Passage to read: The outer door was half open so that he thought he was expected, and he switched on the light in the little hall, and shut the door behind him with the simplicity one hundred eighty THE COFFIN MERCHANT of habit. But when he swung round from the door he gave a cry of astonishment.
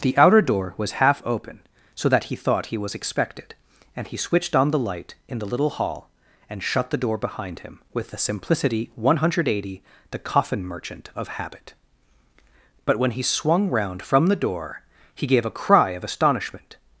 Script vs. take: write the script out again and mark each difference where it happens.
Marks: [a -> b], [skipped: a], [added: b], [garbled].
The outer door was half open so that he thought he was expected, and he switched on the light in the little hall, and shut the door behind him with the simplicity one hundred eighty THE COFFIN MERCHANT of habit. But when he swung round from the door he gave a cry of astonishment.